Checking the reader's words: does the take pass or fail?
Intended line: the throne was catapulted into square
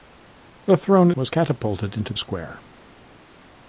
pass